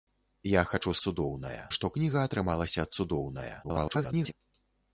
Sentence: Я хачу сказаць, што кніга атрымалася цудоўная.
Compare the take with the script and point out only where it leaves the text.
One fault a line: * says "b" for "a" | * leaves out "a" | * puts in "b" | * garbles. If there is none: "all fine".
* says "цудоўная" for "сказаць"
* garbles